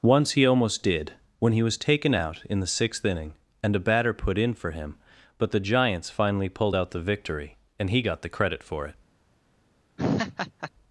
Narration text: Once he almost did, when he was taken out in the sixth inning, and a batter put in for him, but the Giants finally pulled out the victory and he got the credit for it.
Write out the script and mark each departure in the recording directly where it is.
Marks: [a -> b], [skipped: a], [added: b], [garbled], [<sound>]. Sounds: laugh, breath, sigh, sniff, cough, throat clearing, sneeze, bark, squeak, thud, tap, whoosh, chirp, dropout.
Once he almost did, when he was taken out in the sixth inning, and a batter put in for him, but the Giants finally pulled out the victory and he got the credit for it. [laugh]